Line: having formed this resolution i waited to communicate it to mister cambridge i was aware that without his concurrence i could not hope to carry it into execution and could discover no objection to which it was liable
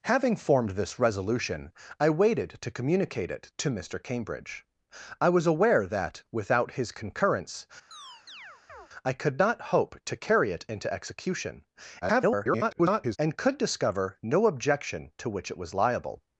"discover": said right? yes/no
yes